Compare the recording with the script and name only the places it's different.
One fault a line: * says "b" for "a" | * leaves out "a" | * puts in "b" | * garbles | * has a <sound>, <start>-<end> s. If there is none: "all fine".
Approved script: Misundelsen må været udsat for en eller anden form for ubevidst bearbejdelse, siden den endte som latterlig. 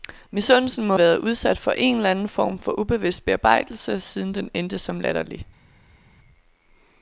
all fine